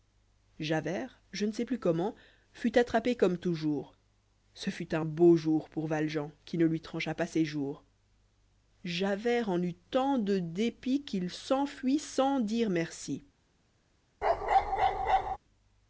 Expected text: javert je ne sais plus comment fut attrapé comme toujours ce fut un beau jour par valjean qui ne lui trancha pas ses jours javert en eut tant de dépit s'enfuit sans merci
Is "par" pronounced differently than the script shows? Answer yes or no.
yes